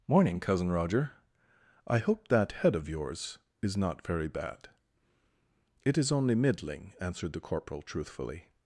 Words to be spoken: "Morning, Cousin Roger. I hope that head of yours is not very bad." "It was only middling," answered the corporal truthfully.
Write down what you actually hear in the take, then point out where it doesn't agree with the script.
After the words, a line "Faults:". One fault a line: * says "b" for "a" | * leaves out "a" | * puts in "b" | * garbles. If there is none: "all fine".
"Morning, Cousin Roger. I hope that head of yours is not very bad." "It is only middling," answered the corporal truthfully.
Faults:
* says "is" for "was"